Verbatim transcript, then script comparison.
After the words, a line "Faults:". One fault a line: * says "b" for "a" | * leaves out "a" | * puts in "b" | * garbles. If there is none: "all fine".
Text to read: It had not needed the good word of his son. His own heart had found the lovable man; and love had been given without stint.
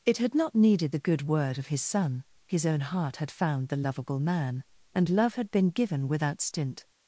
It had not needed the good word of his son. His own heart had found the lovable man; and love had been given without stint.
Faults:
all fine